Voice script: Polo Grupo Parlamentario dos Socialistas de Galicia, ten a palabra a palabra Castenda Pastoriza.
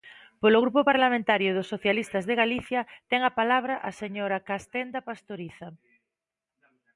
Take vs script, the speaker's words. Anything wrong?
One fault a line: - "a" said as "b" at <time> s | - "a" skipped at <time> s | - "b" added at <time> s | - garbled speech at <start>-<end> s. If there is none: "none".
- "palabra" said as "señora" at 4.0 s